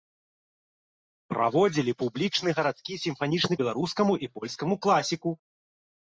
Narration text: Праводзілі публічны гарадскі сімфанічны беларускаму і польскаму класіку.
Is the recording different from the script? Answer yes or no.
no